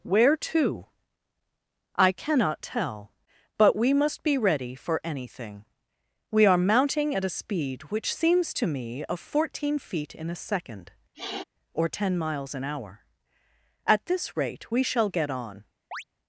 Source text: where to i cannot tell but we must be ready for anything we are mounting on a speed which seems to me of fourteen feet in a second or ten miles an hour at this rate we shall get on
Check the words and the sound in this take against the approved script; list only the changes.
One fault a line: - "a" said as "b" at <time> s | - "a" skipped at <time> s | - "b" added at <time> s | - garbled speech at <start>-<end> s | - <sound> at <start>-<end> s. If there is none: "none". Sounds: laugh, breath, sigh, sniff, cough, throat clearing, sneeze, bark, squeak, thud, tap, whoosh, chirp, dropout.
- "on" said as "at" at 7.1 s
- sniff at 11.1-11.4 s
- chirp at 15.9-16.0 s